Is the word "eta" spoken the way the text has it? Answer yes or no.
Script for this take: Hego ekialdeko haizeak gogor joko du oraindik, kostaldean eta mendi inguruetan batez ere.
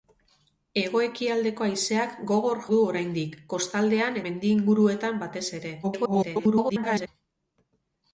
no